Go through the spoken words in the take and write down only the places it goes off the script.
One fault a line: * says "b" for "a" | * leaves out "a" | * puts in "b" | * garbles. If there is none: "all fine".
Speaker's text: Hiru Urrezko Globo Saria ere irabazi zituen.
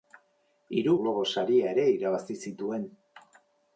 * leaves out "Urrezko"